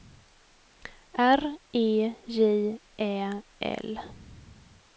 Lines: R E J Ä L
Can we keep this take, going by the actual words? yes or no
yes